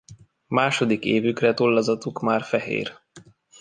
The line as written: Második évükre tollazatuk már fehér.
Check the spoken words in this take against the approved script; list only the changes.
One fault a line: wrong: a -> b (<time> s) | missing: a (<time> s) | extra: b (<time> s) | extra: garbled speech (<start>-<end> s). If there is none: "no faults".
no faults